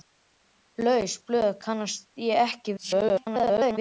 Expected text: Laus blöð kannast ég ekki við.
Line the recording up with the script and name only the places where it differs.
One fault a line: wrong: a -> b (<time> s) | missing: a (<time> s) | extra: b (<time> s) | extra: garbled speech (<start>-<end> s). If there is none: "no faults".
extra: garbled speech (2.8-3.8 s)